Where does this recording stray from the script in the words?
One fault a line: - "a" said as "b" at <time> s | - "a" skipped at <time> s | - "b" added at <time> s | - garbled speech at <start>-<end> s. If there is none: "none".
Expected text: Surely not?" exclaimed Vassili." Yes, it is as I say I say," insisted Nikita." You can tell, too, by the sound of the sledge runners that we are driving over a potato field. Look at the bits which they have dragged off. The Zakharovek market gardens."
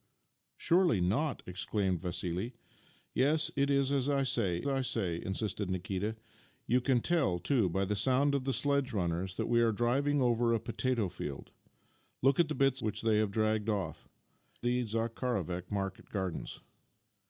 none